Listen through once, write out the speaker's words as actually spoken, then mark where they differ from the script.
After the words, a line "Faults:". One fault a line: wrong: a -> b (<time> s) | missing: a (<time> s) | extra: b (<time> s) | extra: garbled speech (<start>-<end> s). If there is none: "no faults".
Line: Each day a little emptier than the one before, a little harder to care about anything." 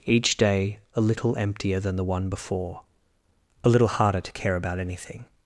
Each day a little emptier than the one before, a little harder to care about anything."
Faults:
no faults